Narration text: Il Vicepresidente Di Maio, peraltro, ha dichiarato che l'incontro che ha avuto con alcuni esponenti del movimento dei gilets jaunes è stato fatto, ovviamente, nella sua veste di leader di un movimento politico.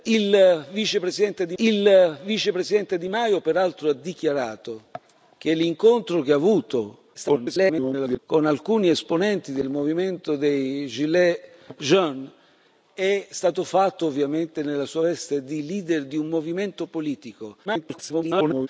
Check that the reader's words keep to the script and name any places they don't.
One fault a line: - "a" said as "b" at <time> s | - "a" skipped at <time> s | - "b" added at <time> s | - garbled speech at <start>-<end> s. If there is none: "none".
- "il Vicepresidente Di" added at 1.6 s
- garbled speech at 7.1-8.2 s
- garbled speech at 17.6-18.7 s